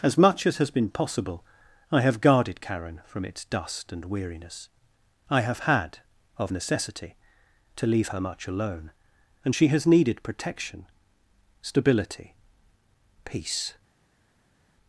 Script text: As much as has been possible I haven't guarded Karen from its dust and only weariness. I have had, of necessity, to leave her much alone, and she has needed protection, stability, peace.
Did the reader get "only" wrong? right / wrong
wrong